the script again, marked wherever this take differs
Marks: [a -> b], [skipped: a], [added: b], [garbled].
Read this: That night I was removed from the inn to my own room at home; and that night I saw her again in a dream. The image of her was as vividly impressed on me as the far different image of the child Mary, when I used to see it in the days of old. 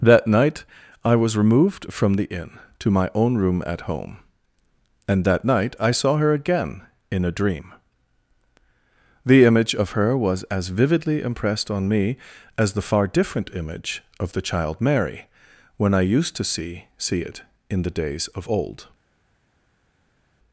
That night I was removed from the inn to my own room at home; and that night I saw her again in a dream. The image of her was as vividly impressed on me as the far different image of the child Mary, when I used to see [added: see] it in the days of old.